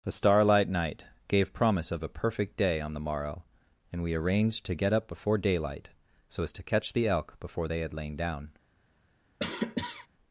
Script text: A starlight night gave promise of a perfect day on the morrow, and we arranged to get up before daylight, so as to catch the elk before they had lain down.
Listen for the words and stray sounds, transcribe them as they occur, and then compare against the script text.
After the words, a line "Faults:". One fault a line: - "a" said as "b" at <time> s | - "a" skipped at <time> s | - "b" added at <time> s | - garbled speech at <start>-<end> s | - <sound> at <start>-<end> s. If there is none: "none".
A starlight night gave promise of a perfect day on the morrow, and we arranged to get up before daylight, so as to catch the elk before they had lain down.
Faults:
- cough at 9.4-10.1 s